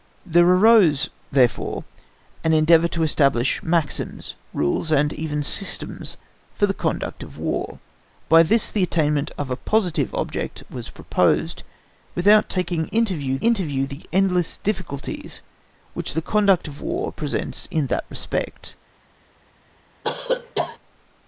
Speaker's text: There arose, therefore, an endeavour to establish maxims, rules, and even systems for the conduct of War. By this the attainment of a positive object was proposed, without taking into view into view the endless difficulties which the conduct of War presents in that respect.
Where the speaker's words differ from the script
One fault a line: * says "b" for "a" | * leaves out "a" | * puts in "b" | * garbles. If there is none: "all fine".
all fine